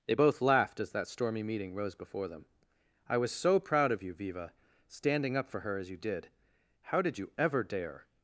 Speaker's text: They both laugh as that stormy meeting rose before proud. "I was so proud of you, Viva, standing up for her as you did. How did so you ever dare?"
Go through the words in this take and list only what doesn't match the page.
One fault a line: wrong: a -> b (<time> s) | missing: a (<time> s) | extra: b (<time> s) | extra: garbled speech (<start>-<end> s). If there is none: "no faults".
wrong: laugh -> laughed (0.4 s)
wrong: proud -> them (2.3 s)
missing: so (7.2 s)